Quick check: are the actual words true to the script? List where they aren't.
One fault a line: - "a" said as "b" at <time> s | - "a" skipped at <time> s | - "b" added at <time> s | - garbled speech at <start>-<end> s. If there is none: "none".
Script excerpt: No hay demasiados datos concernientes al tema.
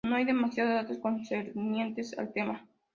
none